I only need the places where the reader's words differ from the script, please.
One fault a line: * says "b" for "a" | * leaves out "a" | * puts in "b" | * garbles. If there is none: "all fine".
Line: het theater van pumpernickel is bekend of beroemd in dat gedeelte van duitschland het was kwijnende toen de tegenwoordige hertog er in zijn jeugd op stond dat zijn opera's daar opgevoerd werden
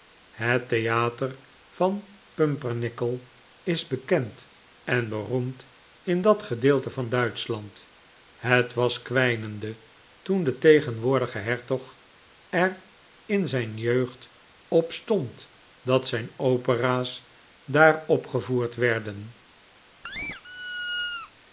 * says "en" for "of"